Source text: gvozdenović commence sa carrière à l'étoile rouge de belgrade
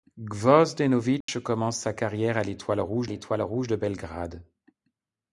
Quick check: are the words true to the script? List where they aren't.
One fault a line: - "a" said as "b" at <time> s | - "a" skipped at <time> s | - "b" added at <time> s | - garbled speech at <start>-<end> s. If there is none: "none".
- "l'étoile rouge" added at 3.0 s